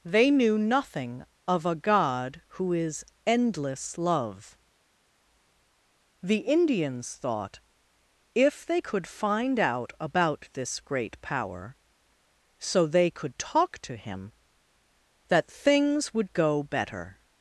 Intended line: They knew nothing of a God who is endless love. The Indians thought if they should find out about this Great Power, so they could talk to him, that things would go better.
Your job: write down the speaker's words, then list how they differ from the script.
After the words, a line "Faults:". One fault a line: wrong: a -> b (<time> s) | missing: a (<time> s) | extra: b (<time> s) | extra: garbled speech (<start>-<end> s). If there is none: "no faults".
They knew nothing of a God who is endless love. The Indians thought if they could find out about this Great Power, so they could talk to him, that things would go better.
Faults:
wrong: should -> could (8.8 s)